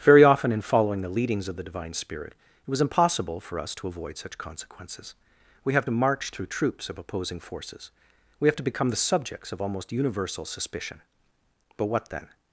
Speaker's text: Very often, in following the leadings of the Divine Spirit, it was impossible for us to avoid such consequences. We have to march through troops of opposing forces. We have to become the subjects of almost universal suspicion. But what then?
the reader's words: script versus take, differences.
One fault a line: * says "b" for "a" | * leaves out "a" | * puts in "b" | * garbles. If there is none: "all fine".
all fine